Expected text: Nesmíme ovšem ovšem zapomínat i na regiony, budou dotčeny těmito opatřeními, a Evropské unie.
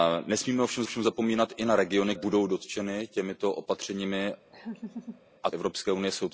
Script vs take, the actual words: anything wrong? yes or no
no